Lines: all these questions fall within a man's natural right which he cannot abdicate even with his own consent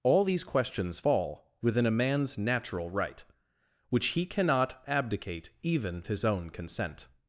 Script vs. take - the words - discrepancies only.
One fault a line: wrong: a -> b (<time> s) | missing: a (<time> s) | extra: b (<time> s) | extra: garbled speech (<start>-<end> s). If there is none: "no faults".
missing: with (6.0 s)